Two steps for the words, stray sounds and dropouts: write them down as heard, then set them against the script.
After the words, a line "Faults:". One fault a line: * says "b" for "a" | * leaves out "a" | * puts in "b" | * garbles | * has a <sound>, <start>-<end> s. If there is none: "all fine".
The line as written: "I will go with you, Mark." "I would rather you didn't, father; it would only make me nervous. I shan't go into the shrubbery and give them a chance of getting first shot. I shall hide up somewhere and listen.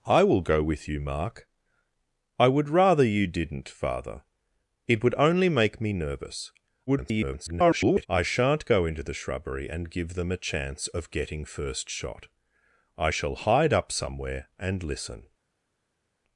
"I will go with you, Mark." "I would rather you didn't, father; it would only make me nervous. [garbled] I shan't go into the shrubbery and give them a chance of getting first shot. I shall hide up somewhere and listen.
Faults:
* garbles